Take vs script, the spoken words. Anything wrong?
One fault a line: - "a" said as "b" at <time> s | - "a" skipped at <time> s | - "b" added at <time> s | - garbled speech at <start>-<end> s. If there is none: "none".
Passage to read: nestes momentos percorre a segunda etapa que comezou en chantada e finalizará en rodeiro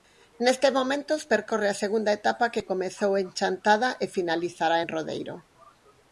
none